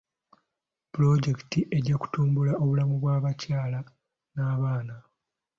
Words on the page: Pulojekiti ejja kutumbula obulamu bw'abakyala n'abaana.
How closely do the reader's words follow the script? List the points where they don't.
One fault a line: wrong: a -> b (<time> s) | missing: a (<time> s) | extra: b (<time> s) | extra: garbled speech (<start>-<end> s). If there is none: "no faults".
no faults